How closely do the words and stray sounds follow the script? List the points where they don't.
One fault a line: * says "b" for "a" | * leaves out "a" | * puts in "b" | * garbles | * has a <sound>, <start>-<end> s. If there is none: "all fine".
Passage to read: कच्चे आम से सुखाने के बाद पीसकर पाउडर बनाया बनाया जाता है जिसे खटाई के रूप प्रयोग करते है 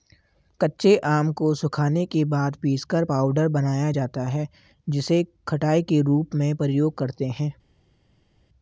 * says "को" for "से"
* leaves out "बनाया"
* puts in "में"